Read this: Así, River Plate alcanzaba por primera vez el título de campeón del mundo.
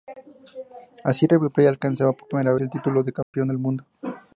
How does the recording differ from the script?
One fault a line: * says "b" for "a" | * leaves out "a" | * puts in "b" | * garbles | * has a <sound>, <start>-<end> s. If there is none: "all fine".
* leaves out "vez"
* has a dropout, 3.2-3.3 s